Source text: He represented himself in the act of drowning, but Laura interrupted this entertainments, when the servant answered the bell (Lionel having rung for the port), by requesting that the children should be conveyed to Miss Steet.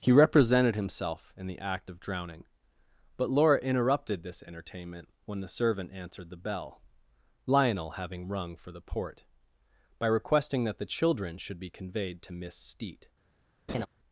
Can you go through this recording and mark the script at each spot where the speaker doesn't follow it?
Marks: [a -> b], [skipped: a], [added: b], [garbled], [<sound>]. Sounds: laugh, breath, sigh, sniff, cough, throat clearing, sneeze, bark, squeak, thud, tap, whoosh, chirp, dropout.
He represented himself in the act of drowning, but Laura interrupted this [entertainments, -> entertainment] when the servant answered the bell (Lionel having rung for the port), by requesting that the children should be conveyed to Miss Steet. [laugh]